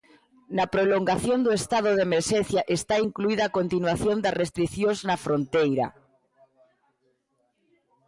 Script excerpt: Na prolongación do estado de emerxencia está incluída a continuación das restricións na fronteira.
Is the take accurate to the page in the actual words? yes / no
yes